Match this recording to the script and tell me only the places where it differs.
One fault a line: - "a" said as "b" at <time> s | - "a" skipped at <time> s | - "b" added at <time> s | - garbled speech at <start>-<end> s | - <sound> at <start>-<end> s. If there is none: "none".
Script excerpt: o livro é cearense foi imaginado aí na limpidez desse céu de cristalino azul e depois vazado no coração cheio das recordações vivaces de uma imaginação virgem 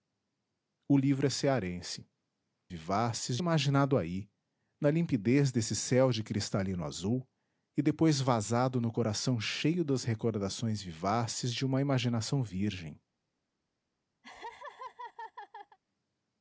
- "foi" said as "vivaces" at 2.7 s
- laugh at 14.2-15.8 s